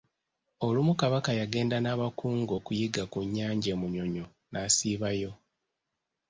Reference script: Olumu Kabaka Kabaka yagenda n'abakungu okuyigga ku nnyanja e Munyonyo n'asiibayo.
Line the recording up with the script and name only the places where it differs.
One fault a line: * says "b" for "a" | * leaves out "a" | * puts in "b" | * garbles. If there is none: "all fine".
* leaves out "Kabaka"